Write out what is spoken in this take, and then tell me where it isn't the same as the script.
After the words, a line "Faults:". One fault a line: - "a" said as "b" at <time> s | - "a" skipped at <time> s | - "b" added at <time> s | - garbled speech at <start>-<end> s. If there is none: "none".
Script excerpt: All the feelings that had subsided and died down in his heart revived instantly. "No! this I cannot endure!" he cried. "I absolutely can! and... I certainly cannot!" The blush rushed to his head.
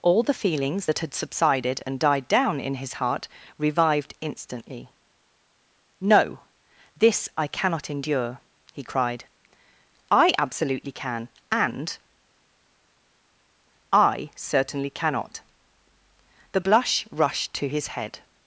All the feelings that had subsided and died down in his heart revived instantly. "No! this I cannot endure!" he cried. "I absolutely can! and... I certainly cannot!" The blush rushed to his head.
Faults:
none